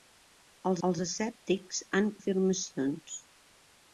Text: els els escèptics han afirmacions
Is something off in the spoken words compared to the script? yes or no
no